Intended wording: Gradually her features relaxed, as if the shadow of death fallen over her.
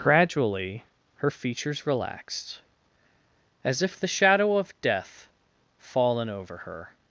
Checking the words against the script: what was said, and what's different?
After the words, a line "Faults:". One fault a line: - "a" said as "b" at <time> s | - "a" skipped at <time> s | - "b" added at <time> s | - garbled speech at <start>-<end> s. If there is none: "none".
Gradually her features relaxed, as if the shadow of death fallen over her.
Faults:
none